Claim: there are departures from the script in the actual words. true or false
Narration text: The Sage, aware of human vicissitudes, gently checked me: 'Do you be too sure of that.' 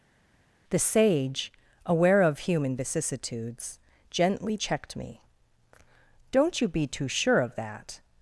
true